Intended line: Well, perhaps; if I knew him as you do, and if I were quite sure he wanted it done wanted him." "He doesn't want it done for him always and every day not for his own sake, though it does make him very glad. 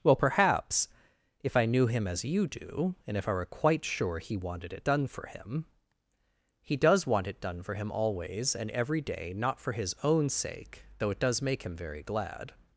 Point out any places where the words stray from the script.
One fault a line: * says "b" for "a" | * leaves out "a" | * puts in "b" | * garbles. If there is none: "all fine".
* says "for" for "wanted"
* says "does" for "doesn't"